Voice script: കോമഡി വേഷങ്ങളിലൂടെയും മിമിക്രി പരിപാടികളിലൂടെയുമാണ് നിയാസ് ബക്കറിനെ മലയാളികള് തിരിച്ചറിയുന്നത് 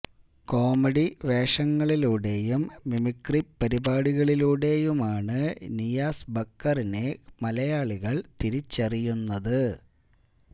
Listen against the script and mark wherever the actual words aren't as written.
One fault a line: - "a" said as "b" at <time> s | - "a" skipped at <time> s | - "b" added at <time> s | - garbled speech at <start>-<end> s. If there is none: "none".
none